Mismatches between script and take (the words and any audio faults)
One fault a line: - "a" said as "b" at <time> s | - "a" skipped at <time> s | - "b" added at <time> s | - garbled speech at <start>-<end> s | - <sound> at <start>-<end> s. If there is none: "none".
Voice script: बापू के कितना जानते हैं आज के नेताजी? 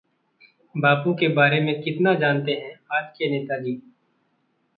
- "बारे में" added at 1.3 s